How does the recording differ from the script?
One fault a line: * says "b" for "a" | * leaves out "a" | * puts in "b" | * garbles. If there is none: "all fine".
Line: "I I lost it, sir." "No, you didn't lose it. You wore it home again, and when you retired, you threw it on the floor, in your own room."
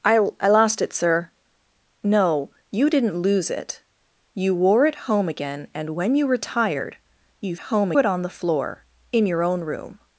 * says "home" for "threw"